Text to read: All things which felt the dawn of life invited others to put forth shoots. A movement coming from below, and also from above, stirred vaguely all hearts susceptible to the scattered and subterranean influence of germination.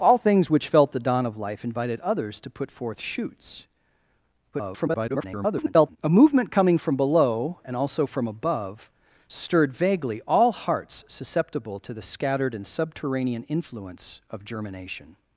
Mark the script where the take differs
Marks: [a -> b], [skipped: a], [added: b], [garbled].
All things which felt the dawn of life invited others to put forth shoots. [garbled] A movement coming from below, and also from above, stirred vaguely all hearts susceptible to the scattered and subterranean influence of germination.